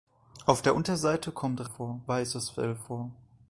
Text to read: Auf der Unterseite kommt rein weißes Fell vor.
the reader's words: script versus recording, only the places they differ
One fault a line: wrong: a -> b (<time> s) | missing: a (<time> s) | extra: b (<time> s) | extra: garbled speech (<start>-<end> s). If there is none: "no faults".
wrong: rein -> vor (1.6 s)